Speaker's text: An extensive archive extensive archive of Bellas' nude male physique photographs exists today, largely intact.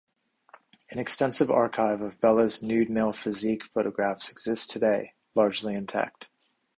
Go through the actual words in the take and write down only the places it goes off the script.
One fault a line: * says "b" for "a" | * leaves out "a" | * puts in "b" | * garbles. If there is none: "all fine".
* leaves out "extensive archive"